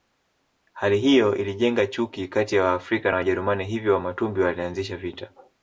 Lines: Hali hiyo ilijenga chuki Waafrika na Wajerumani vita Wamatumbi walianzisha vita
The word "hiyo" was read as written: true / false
true